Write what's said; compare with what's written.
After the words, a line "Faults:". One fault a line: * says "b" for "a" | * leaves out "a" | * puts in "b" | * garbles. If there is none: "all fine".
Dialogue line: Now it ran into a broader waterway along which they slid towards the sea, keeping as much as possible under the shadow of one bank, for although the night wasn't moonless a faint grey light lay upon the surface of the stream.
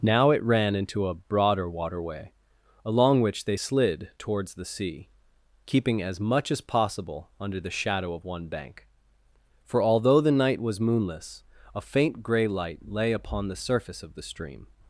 Now it ran into a broader waterway along which they slid towards the sea, keeping as much as possible under the shadow of one bank, for although the night was moonless a faint grey light lay upon the surface of the stream.
Faults:
* says "was" for "wasn't"